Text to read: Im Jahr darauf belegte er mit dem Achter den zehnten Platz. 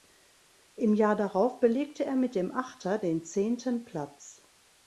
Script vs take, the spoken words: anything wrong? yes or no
no